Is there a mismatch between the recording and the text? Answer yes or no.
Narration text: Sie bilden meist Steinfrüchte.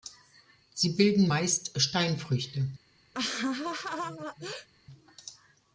no